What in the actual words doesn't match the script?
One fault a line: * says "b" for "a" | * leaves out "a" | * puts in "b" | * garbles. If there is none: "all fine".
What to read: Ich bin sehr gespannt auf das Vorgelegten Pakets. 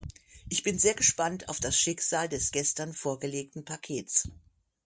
* puts in "Schicksal des gestern"